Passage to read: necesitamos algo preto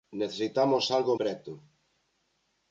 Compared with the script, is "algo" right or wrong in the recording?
right